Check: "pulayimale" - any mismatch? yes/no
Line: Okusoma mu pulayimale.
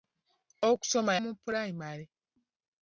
no